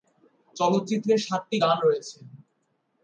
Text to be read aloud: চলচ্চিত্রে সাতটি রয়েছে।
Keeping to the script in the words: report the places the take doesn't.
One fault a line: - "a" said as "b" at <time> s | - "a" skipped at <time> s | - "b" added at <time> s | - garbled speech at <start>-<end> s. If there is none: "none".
- "গান" added at 1.6 s